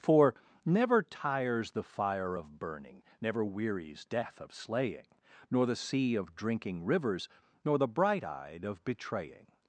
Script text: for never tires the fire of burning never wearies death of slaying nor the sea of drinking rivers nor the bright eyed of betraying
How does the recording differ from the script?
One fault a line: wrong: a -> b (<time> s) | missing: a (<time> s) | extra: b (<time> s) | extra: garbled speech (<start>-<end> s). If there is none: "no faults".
no faults